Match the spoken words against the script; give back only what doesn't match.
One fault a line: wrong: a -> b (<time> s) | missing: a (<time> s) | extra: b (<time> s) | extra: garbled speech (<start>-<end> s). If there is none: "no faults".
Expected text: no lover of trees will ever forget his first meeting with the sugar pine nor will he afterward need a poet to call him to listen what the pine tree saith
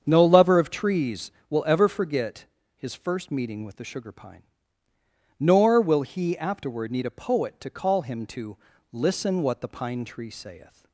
no faults